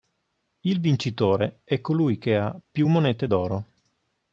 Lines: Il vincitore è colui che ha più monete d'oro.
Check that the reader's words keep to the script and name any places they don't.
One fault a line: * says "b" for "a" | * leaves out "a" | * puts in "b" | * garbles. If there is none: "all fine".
all fine